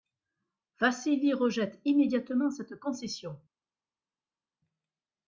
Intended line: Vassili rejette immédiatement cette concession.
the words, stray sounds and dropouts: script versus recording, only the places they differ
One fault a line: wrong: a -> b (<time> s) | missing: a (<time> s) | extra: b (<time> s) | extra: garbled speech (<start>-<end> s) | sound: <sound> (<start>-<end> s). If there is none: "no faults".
no faults